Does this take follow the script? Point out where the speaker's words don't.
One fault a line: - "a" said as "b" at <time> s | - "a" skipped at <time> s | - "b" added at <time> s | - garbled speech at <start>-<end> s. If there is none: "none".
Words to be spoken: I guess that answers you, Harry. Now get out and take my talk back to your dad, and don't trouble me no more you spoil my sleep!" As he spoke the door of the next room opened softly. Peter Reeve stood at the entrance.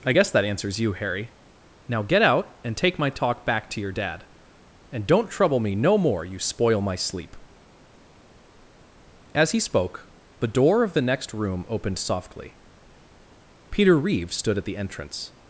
none